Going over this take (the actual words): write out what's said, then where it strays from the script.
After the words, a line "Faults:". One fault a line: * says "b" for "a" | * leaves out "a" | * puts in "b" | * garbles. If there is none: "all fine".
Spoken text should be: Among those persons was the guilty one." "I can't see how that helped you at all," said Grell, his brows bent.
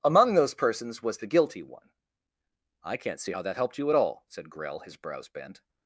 Among those persons was the guilty one." "I can't see how that helped you at all," said Grell, his brows bent.
Faults:
all fine